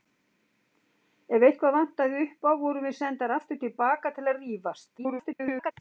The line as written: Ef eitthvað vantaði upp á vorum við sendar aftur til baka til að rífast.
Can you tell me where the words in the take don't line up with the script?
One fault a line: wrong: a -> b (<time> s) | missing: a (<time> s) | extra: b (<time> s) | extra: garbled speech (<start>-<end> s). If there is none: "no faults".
extra: garbled speech (5.0-5.7 s)